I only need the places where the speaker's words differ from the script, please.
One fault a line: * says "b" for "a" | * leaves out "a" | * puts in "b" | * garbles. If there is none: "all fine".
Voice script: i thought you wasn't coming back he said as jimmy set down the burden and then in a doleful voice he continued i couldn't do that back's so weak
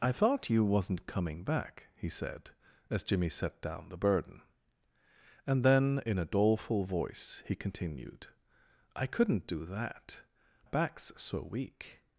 all fine